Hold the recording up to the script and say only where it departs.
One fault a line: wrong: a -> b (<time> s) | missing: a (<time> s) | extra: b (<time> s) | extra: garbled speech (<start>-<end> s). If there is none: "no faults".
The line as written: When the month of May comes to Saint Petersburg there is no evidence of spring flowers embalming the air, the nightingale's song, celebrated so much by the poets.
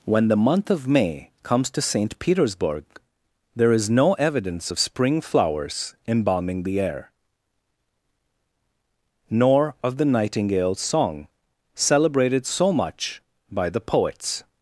extra: nor of (9.3 s)